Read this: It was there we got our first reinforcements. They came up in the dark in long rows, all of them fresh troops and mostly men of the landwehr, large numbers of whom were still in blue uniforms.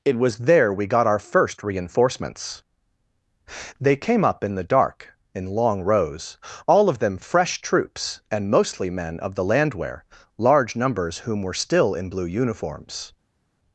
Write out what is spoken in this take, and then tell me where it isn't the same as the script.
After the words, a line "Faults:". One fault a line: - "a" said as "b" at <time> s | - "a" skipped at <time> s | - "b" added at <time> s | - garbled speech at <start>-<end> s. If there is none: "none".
It was there we got our first reinforcements. They came up in the dark in long rows, all of them fresh troops and mostly men of the landwehr, large numbers whom were still in blue uniforms.
Faults:
- "of" skipped at 11.2 s